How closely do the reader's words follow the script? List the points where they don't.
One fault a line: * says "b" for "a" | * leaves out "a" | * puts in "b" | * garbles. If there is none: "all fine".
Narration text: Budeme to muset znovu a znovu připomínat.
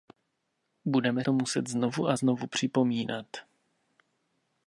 all fine